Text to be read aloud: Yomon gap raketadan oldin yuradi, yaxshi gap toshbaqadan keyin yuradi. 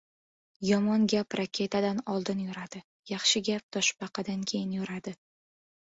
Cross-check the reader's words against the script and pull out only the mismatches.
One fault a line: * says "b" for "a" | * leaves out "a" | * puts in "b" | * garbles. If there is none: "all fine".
all fine